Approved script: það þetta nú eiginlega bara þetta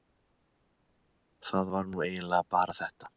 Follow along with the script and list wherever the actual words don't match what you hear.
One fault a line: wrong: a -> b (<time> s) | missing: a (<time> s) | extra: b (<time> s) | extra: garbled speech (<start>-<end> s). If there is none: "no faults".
wrong: þetta -> var (1.8 s)